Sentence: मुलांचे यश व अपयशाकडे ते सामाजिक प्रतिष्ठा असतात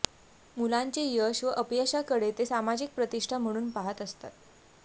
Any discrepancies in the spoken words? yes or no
yes